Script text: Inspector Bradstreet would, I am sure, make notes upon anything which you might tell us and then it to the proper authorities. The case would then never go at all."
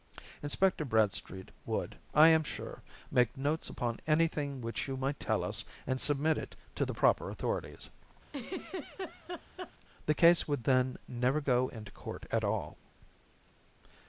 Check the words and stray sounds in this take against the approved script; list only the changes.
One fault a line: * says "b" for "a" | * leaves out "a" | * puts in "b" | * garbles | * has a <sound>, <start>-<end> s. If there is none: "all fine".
* says "submit" for "then"
* has a laugh, 8.3-9.7 s
* puts in "into court"